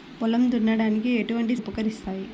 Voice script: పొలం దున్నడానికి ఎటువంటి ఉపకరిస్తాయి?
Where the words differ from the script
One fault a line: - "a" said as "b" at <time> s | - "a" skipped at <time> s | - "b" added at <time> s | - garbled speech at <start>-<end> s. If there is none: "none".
none